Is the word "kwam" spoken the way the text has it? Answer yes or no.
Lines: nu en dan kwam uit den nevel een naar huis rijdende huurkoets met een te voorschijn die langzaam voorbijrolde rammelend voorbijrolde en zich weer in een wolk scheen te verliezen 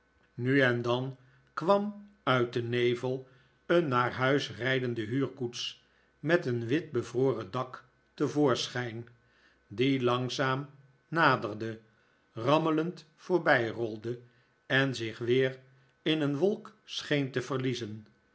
yes